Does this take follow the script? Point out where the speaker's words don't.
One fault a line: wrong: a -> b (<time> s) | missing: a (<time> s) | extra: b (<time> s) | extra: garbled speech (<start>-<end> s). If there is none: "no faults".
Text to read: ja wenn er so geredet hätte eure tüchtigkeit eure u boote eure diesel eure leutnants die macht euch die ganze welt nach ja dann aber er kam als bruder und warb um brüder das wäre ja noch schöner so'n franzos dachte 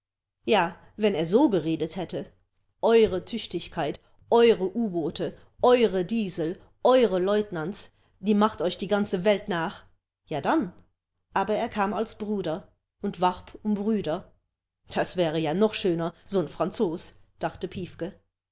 no faults